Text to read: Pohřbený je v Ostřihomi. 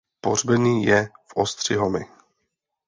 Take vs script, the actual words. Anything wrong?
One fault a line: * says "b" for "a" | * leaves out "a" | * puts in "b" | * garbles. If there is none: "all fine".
all fine